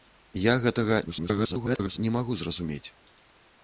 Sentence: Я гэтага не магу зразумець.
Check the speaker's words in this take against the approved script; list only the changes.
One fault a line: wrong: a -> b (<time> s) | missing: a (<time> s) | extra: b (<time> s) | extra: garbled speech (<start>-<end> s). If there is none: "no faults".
extra: garbled speech (1.1-2.0 s)